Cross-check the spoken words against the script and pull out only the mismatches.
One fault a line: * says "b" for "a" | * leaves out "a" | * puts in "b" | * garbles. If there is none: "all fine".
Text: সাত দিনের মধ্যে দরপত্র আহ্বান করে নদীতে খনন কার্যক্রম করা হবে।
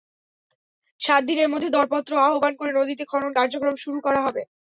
* puts in "শুরু"